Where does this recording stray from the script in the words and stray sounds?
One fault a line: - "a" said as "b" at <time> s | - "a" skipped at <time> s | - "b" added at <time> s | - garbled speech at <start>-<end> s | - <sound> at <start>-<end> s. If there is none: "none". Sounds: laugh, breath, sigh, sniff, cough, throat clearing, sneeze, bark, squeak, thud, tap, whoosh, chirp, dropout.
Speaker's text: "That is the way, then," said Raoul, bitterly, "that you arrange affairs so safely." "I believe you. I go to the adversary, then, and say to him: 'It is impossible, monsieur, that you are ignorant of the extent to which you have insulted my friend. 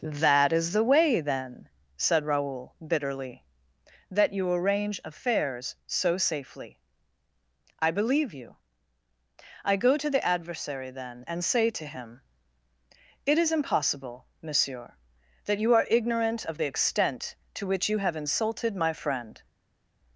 none